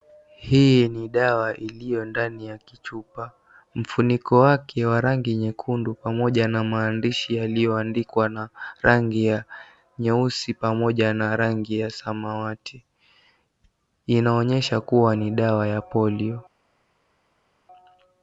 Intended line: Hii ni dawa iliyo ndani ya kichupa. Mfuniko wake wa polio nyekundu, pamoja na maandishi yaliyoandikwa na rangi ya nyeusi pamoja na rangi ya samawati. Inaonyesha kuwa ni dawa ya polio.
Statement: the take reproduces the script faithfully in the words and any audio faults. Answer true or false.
false